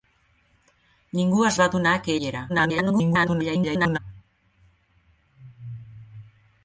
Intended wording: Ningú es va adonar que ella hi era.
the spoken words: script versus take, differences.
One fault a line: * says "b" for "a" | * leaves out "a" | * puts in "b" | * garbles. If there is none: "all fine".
* leaves out "ella"
* garbles